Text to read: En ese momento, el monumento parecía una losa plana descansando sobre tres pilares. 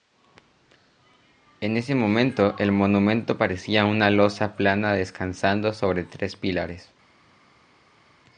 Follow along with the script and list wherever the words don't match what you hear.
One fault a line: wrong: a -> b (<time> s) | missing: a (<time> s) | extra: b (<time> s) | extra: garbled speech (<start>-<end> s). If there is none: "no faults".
no faults